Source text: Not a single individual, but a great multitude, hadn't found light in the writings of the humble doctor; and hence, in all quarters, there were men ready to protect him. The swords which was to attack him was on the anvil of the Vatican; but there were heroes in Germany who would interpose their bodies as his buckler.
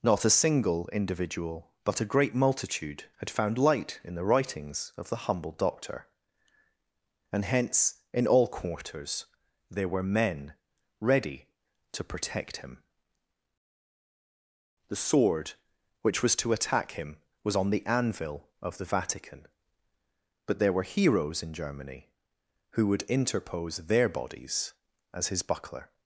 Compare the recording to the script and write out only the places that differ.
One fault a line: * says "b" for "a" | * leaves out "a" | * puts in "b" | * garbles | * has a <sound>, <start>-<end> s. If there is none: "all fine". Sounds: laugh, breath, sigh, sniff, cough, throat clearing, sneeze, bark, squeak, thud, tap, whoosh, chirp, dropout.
* says "had" for "hadn't"
* says "sword" for "swords"